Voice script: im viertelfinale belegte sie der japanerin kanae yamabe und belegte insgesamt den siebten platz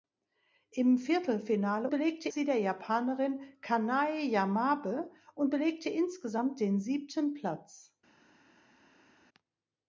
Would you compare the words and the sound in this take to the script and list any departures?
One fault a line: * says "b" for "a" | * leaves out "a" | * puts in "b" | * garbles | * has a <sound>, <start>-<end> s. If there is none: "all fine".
all fine